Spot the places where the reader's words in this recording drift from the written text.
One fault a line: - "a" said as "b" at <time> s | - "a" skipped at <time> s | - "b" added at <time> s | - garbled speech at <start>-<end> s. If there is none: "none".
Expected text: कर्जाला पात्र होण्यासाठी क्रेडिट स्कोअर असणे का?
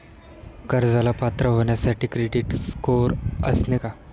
none